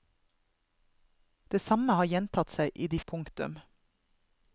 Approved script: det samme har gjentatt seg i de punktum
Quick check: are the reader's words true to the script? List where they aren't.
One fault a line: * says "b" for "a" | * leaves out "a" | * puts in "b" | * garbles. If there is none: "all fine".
all fine